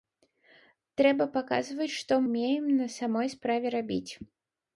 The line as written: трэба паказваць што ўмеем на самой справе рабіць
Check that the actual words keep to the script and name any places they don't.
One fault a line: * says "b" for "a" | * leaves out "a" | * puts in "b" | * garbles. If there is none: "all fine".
all fine